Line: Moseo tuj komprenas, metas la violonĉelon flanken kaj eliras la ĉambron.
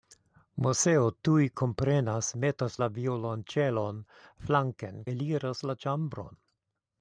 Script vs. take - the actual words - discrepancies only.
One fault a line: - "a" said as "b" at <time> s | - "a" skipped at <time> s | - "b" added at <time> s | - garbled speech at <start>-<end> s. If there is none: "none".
- "kaj" skipped at 5.0 s